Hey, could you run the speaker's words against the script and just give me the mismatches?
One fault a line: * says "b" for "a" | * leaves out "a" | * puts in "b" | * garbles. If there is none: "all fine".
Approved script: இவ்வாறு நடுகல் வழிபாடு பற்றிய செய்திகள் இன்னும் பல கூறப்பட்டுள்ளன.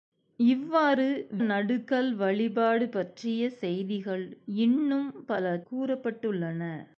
all fine